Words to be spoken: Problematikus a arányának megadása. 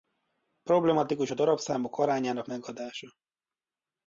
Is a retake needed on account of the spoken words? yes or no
yes